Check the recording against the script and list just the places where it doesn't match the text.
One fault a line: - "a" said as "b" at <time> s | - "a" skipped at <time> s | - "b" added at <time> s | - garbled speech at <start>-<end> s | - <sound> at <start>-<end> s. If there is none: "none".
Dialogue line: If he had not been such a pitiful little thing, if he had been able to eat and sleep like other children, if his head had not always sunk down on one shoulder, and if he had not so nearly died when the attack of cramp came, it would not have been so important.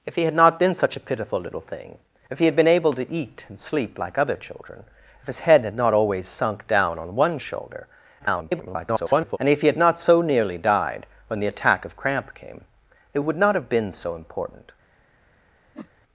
- garbled speech at 8.2-9.4 s
- whoosh at 15.7-15.9 s